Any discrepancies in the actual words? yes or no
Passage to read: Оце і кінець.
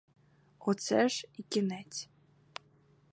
yes